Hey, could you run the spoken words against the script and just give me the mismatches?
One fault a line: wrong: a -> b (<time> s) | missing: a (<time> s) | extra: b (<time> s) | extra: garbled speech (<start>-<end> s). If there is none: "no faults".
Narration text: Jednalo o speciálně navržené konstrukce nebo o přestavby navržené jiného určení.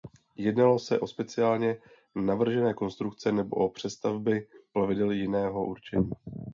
extra: se (0.8 s)
wrong: navržené -> plavidel (4.7 s)